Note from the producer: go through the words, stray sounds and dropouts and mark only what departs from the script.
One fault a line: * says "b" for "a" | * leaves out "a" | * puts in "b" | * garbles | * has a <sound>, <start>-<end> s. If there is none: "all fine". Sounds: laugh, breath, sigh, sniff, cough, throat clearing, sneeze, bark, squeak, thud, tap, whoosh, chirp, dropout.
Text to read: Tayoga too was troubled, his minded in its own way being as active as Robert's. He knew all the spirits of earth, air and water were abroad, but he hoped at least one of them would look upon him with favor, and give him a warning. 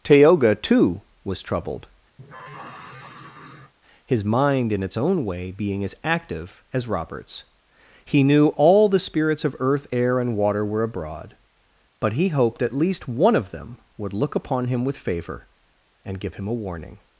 * has a sigh, 2.2-3.7 s
* says "mind" for "minded"